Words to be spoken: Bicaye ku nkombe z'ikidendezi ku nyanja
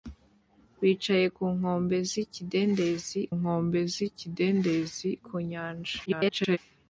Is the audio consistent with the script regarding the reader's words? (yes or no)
no